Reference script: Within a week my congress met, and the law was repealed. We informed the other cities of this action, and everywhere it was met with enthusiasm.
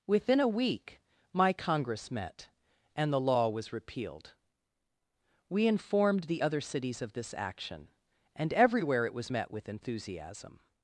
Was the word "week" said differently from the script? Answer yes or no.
no